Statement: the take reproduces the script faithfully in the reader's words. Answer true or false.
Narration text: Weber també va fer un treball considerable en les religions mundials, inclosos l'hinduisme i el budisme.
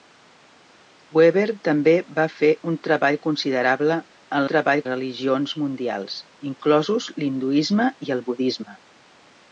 false